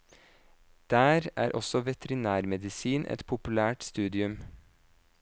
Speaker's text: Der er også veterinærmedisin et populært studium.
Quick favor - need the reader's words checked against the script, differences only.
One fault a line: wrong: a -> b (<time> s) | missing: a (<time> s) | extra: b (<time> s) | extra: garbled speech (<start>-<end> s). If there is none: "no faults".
no faults